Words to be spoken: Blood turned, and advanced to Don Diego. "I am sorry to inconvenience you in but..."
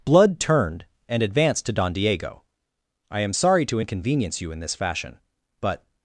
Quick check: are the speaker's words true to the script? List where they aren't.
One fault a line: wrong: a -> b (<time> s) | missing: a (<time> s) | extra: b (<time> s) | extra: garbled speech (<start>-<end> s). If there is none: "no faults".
extra: this fashion (4.6 s)